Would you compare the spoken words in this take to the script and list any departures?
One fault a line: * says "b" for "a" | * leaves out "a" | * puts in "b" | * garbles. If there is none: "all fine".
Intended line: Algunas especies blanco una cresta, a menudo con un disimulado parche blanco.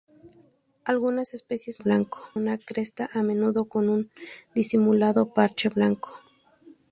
all fine